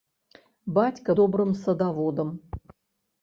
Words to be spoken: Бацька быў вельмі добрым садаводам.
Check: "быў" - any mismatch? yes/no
yes